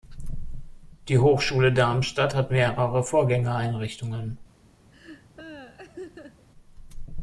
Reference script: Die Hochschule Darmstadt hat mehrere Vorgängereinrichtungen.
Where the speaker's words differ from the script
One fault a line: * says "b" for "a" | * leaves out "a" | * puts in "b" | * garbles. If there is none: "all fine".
all fine